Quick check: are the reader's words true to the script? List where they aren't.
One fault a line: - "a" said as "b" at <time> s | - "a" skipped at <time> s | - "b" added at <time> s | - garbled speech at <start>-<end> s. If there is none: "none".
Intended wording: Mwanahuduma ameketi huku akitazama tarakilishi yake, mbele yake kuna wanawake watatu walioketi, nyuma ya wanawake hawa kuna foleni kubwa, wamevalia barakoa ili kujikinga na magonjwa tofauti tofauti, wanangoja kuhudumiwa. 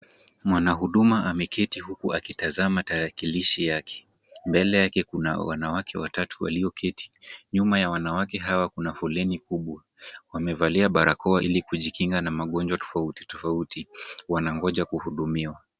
none